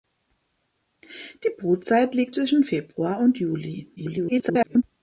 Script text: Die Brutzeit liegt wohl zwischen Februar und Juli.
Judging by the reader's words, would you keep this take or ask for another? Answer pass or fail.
fail